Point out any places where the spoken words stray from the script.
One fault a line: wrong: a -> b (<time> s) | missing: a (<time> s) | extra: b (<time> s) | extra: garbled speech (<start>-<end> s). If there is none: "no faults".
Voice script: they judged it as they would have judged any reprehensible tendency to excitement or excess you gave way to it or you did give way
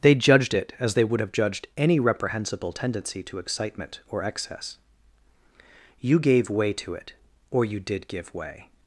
no faults